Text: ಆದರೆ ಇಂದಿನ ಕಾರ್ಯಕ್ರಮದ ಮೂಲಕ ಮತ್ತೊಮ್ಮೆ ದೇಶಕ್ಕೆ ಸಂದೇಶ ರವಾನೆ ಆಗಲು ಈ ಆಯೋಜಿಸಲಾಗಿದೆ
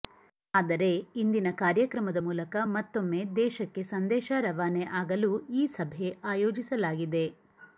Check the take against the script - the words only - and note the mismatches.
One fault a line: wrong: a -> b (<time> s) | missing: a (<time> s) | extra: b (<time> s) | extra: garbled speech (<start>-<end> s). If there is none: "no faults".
extra: ಸಭೆ (5.8 s)